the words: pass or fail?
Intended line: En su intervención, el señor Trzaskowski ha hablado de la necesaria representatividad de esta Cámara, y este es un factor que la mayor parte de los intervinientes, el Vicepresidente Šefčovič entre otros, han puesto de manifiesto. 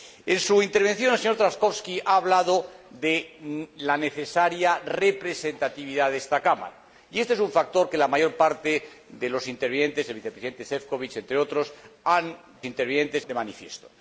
fail